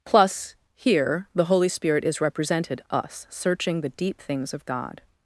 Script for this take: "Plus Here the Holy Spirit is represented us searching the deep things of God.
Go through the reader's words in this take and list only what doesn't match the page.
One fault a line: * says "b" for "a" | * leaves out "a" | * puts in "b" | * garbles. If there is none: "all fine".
all fine